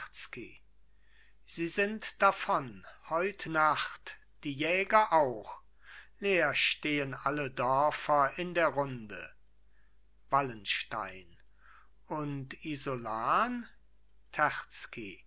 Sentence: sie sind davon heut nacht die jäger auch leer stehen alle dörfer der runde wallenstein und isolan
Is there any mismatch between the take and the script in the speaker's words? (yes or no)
yes